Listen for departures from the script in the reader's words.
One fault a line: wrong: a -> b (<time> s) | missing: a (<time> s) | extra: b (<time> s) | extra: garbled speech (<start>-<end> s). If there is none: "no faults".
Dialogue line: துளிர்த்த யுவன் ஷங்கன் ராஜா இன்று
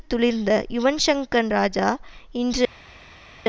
no faults